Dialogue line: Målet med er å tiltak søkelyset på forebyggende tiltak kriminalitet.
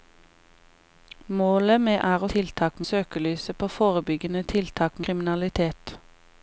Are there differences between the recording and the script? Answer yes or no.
no